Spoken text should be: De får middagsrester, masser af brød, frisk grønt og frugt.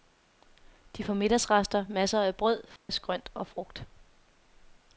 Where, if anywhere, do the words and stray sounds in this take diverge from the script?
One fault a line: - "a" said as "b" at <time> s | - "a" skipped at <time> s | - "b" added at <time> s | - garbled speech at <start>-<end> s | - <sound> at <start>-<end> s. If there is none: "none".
- dropout at 2.8-2.9 s